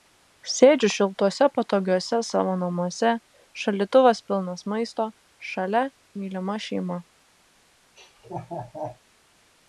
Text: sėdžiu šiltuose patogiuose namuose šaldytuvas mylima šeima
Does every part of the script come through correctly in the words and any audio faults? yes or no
no